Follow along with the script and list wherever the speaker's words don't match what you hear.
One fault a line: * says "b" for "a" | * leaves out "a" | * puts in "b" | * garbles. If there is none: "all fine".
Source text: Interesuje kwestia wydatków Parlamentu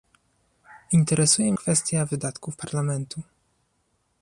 all fine